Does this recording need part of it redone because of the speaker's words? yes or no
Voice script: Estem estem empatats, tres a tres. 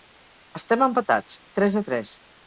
yes